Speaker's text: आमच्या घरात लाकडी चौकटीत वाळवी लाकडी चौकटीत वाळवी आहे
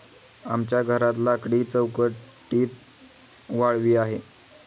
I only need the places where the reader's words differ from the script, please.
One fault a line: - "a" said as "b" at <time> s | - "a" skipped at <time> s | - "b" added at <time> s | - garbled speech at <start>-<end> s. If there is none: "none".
- "लाकडी चौकटीत वाळवी" skipped at 4.0 s